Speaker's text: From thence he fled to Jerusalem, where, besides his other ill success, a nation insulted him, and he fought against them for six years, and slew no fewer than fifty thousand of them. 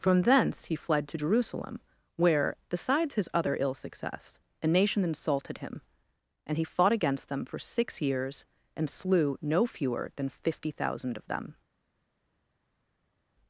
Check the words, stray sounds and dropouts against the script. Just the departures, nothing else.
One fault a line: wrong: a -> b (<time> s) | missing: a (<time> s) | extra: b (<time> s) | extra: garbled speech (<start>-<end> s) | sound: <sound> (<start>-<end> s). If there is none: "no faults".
no faults